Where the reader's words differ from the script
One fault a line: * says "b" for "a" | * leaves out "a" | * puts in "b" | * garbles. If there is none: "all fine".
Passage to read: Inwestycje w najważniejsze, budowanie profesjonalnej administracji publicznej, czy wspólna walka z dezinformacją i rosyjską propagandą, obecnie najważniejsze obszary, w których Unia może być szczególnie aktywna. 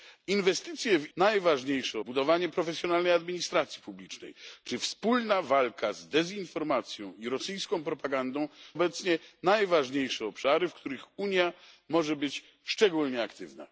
all fine